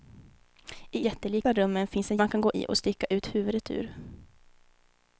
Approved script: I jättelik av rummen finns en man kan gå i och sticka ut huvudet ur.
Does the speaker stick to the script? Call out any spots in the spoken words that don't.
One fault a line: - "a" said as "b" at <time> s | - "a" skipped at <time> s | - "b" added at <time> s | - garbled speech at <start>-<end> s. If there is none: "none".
none